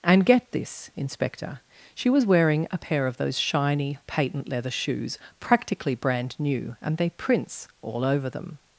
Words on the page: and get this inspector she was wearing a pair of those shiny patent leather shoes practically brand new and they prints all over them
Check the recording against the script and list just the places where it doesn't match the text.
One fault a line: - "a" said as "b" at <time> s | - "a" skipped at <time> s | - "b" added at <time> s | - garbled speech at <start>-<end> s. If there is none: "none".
none